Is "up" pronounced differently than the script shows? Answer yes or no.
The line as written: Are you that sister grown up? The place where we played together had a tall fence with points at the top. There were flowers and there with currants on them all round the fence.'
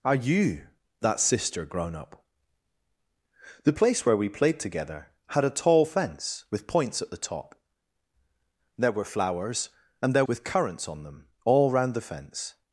no